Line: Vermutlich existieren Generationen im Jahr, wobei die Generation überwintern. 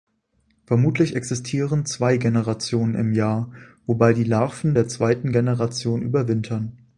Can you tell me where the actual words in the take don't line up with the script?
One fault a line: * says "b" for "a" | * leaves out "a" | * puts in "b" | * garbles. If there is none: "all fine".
* puts in "zwei"
* puts in "Larven der zweiten"